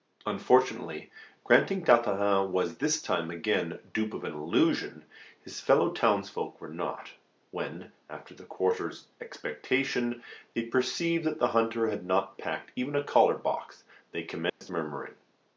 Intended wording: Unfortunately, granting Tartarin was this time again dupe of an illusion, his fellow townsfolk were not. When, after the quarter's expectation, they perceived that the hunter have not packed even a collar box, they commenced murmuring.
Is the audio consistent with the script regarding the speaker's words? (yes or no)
no